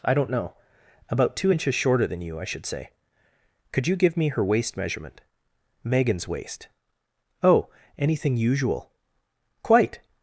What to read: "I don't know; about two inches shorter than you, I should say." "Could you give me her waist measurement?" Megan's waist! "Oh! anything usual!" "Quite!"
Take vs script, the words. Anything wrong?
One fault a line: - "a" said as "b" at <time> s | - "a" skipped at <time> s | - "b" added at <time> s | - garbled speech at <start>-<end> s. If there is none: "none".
none